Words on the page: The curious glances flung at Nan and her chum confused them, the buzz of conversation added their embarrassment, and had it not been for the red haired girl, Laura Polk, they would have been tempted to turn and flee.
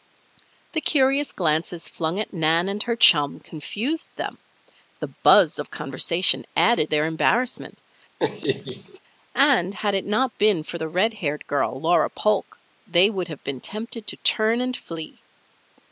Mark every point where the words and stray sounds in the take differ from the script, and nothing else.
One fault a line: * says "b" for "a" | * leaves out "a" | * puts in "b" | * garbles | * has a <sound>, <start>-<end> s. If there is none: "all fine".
* has a laugh, 8.2-9.0 s